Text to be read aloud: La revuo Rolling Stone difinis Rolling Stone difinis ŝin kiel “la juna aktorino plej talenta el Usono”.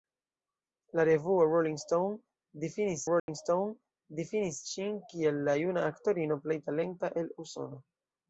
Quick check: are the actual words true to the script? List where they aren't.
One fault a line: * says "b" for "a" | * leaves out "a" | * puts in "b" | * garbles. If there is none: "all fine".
all fine